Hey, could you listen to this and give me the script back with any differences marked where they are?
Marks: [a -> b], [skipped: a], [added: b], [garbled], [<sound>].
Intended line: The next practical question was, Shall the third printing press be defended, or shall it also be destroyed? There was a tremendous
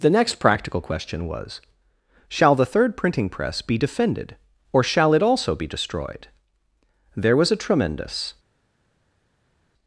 The next practical question was, Shall the third printing press be defended, or shall it also be destroyed? There was a tremendous